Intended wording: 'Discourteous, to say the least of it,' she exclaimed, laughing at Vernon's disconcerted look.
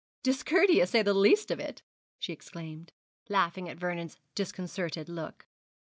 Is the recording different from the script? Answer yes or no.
yes